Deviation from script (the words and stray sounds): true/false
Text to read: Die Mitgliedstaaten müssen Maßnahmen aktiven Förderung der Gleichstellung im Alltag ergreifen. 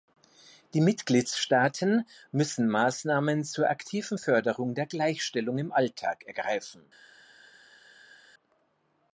true